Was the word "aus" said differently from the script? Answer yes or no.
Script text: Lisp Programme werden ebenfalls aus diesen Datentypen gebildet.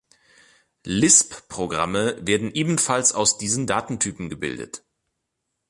no